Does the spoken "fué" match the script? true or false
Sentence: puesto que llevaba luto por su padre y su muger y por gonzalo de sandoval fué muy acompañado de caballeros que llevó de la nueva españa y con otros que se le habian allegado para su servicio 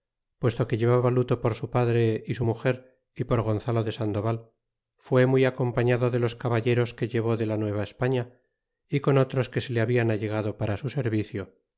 true